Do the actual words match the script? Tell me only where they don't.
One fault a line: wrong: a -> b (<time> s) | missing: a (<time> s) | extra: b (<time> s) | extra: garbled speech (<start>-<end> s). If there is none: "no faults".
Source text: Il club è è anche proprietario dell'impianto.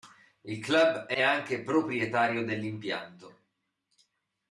no faults